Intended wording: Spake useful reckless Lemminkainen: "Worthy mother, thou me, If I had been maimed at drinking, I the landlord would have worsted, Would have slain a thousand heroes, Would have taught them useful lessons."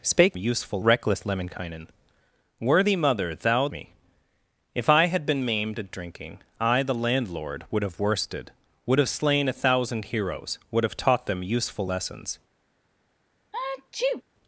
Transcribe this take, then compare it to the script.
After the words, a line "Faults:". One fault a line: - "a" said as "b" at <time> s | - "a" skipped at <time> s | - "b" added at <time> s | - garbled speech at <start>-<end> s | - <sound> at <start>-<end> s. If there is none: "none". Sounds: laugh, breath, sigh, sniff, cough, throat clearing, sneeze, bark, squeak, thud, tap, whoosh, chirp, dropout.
Spake useful reckless Lemminkainen: "Worthy mother, thou me, If I had been maimed at drinking, I the landlord would have worsted, Would have slain a thousand heroes, Would have taught them useful lessons."
Faults:
- sneeze at 13.5-14.2 s